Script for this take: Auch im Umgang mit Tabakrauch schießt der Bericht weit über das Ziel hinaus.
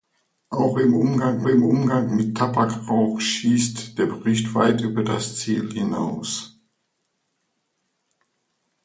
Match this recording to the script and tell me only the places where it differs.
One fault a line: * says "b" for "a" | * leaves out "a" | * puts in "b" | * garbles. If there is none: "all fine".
* puts in "im Umgang"